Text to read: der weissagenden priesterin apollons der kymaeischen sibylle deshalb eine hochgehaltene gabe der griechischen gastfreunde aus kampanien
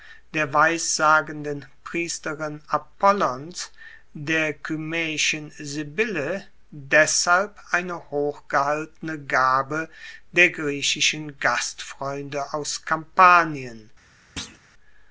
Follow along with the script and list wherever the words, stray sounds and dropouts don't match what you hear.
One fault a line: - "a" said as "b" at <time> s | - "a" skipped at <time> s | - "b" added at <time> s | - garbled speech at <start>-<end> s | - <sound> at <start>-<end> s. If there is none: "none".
- thud at 14.4-14.6 s